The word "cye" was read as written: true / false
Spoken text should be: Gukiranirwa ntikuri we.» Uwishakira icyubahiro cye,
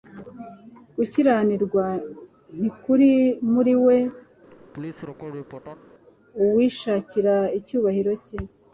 true